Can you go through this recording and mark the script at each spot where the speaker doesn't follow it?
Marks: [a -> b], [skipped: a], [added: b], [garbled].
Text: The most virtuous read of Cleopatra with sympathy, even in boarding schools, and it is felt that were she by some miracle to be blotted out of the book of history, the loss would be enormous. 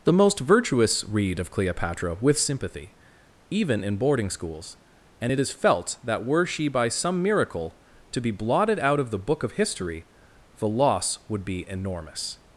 The most virtuous read of Cleopatra with sympathy, even in boarding schools, and it is felt that were she by some miracle to be blotted out of the book of history, the loss would be enormous.